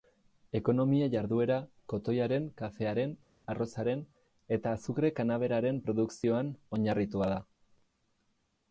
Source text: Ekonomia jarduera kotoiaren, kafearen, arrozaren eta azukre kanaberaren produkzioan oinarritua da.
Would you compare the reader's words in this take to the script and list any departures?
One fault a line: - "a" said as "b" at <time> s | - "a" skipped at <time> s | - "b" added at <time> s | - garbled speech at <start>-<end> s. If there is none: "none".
none